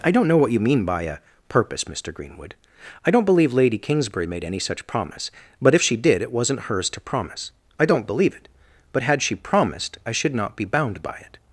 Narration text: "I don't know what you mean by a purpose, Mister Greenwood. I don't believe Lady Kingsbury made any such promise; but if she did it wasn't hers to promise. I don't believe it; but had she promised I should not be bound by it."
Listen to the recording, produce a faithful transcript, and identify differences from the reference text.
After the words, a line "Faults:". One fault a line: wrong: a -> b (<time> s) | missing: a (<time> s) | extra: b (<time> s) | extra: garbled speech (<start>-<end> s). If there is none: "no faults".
"I don't know what you mean by a purpose, Mister Greenwood. I don't believe Lady Kingsbury made any such promise; but if she did it wasn't hers to promise. I don't believe it; but had she promised I should not be bound by it."
Faults:
no faults